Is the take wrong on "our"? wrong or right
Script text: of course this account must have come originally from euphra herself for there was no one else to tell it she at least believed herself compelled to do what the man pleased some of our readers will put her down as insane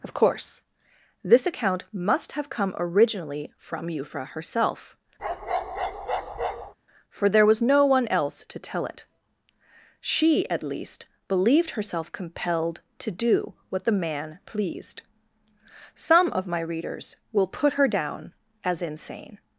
wrong